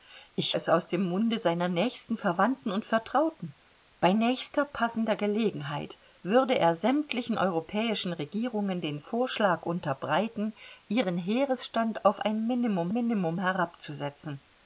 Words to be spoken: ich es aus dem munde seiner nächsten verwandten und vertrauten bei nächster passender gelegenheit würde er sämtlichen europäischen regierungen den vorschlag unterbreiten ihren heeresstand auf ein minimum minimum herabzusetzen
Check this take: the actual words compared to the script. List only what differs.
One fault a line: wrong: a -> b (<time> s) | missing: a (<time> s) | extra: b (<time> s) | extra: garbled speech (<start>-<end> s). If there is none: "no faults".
no faults